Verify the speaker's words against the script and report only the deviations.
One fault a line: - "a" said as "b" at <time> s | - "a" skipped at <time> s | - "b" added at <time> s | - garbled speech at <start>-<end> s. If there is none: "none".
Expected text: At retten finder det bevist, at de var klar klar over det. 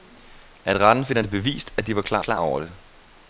none